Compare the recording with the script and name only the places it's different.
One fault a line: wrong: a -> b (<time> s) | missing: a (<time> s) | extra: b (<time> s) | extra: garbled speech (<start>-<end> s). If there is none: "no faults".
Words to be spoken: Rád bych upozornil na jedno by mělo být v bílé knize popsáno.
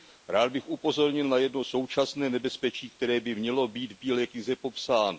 extra: současné nebezpečí které (1.6 s)